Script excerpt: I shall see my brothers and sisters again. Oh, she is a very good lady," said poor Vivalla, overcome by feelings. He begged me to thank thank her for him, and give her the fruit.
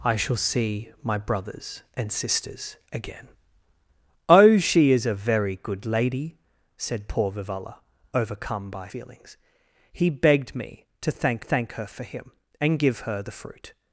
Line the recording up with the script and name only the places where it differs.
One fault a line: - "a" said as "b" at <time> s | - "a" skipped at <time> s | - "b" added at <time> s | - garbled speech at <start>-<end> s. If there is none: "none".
none